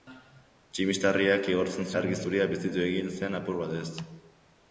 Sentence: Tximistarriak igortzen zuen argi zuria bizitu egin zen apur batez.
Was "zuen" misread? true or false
true